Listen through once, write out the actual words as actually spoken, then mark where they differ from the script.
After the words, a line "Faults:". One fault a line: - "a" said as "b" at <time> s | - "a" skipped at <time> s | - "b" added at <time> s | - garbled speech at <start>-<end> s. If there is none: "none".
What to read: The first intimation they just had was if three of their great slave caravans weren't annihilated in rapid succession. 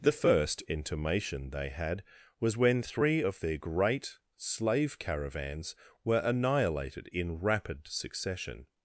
The first intimation they had was when three of their great slave caravans were annihilated in rapid succession.
Faults:
- "just" skipped at 1.7 s
- "if" said as "when" at 2.6 s
- "weren't" said as "were" at 6.0 s